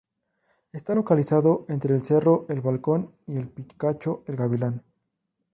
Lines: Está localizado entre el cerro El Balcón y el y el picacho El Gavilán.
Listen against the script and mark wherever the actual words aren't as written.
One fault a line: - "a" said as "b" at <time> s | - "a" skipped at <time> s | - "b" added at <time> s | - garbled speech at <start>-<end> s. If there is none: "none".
- "y el" skipped at 3.5 s